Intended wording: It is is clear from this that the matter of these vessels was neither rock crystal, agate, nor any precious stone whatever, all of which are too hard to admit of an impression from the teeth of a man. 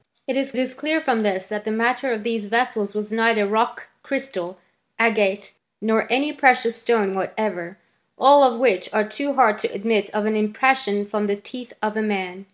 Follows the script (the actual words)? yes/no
yes